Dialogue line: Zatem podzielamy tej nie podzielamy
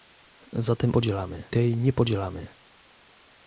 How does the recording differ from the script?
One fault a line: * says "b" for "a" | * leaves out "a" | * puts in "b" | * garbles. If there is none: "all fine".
all fine